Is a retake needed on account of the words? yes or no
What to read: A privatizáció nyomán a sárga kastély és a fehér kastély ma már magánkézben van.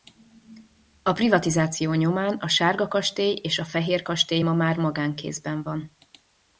no